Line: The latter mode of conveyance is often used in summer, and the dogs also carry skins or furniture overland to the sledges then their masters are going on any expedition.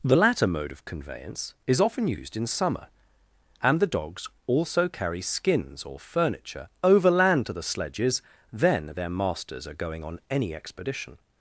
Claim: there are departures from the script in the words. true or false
false